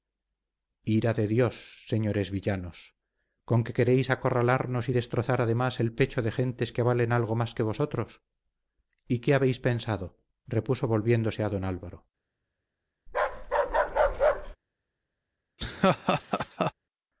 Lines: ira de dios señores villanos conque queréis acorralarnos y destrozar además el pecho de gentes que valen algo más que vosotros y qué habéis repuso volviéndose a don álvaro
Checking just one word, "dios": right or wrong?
right